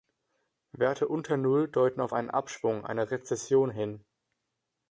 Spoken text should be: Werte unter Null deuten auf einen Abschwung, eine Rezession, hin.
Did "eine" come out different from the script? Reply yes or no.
no